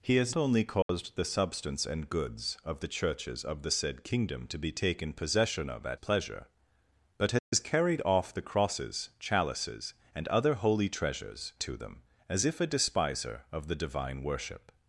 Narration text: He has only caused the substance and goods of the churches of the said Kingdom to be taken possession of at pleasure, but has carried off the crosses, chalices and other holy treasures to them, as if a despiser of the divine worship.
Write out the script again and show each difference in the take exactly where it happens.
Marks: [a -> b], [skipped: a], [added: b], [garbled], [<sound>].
He has only caused [dropout] the substance and goods of the churches of the said Kingdom to be taken possession of at pleasure, but has carried off the crosses, chalices and other holy treasures to them, as if a despiser of the divine worship.